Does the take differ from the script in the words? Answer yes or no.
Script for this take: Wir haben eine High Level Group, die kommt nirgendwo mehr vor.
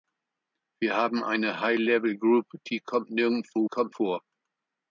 yes